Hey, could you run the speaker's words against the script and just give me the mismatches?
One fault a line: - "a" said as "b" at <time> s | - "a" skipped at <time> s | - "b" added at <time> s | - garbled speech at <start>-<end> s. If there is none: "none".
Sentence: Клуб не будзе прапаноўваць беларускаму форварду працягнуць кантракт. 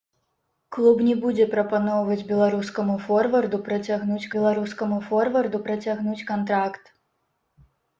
- "беларускаму форварду працягнуць" added at 4.4 s